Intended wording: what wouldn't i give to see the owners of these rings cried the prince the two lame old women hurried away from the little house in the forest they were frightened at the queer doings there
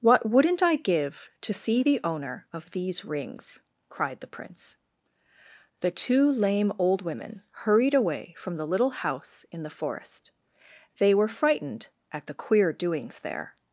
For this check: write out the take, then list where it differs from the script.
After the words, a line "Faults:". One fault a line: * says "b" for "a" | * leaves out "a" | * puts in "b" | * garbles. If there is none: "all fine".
what wouldn't i give to see the owner of these rings cried the prince the two lame old women hurried away from the little house in the forest they were frightened at the queer doings there
Faults:
* says "owner" for "owners"